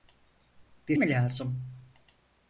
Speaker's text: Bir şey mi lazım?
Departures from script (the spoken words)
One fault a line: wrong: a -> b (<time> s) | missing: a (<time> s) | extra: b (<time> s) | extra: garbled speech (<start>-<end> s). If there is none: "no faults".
missing: şey (0.9 s)